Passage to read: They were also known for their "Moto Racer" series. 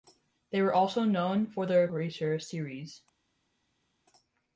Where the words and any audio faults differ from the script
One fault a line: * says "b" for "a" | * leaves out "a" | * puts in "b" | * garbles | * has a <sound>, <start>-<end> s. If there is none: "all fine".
* leaves out "Moto"